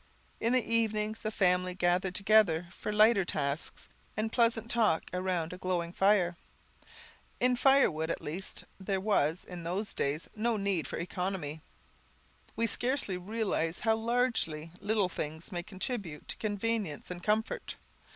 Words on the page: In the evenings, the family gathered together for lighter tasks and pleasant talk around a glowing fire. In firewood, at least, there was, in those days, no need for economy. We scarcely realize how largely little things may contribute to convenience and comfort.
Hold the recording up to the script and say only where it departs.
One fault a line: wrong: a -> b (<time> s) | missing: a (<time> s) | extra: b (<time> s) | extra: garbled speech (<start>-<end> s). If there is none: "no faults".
no faults